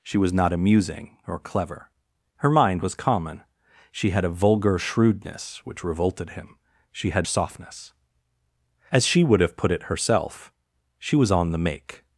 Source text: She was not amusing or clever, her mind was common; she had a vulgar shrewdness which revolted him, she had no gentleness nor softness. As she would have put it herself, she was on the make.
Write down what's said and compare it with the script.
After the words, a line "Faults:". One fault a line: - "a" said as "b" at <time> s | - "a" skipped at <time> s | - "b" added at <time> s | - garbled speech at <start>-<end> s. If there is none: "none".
She was not amusing or clever, her mind was common; she had a vulgar shrewdness which revolted him, she had softness. As she would have put it herself, she was on the make.
Faults:
- "no gentleness nor" skipped at 7.3 s